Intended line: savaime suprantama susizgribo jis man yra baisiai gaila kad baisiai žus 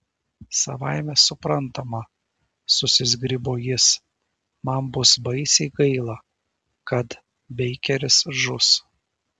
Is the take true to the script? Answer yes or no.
no